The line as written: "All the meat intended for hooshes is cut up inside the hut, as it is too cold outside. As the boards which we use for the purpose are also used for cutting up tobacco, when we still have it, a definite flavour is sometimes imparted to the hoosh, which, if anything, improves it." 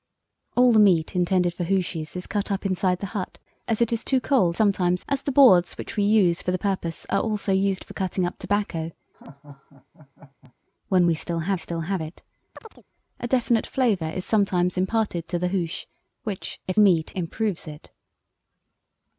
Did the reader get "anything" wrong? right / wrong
wrong